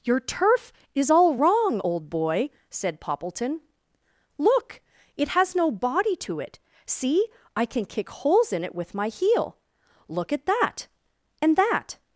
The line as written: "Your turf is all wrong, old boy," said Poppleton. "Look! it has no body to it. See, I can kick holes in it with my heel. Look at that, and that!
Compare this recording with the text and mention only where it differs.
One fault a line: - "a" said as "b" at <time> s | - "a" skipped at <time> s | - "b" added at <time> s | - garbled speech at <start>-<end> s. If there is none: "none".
none